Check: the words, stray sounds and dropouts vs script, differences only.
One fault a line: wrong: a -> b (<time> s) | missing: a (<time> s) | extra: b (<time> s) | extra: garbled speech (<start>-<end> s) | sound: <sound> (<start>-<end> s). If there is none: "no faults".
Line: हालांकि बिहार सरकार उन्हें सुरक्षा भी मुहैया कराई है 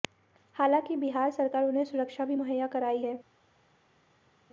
no faults